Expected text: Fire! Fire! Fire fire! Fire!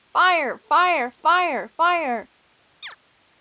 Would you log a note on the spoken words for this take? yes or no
yes